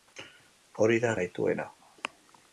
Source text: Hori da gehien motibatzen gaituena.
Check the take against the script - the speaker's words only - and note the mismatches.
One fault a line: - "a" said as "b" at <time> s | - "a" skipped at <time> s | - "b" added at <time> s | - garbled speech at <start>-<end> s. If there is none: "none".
- "gehien motibatzen" skipped at 1.1 s